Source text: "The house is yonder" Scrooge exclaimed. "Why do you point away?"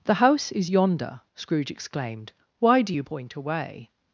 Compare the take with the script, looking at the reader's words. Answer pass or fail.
pass